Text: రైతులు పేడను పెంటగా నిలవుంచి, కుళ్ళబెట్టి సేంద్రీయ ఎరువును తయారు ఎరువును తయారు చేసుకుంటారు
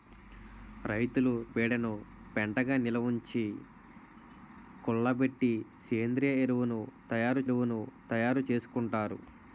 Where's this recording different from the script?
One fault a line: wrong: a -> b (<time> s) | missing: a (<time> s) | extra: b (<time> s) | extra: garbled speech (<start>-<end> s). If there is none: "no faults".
no faults